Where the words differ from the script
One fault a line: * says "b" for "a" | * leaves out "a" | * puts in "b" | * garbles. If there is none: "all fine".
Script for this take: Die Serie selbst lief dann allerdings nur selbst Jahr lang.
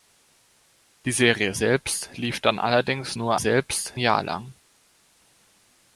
all fine